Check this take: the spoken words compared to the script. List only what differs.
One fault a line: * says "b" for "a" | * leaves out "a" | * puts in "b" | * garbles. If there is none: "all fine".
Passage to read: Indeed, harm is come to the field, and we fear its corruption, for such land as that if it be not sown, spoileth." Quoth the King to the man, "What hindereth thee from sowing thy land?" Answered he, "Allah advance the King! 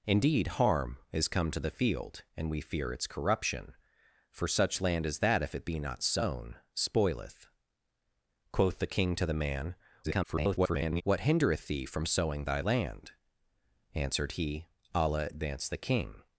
* garbles